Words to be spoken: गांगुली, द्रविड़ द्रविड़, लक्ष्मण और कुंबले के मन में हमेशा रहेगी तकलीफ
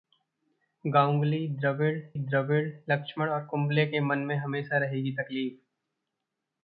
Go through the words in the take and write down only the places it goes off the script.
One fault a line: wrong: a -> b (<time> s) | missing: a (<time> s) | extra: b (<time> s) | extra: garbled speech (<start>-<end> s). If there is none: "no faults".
no faults